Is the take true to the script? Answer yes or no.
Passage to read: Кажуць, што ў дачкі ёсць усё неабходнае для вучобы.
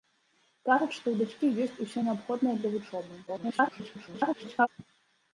no